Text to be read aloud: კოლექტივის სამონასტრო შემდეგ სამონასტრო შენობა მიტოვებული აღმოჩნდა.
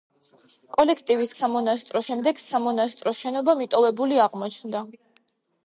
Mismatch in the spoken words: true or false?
false